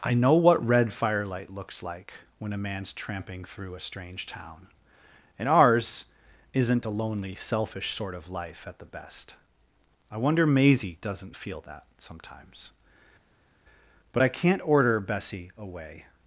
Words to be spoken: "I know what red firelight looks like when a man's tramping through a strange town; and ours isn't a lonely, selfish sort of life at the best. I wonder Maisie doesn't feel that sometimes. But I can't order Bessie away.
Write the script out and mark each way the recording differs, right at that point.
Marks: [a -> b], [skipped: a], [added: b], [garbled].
"I know what red firelight looks like when a man's tramping through a strange town; and ours isn't a lonely, selfish sort of life at the best. I wonder Maisie doesn't feel that sometimes. But I can't order Bessie away.